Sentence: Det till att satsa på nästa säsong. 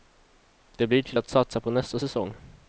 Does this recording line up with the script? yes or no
no